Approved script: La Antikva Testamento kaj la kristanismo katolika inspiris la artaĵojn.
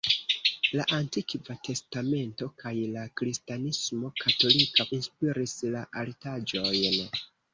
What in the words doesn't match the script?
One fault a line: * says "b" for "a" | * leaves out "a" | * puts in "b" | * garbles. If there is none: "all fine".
all fine